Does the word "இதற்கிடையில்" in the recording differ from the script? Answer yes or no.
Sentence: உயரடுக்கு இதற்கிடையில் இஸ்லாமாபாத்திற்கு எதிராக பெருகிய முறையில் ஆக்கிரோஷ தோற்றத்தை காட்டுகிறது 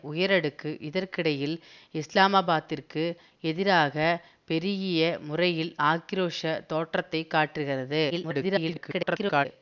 no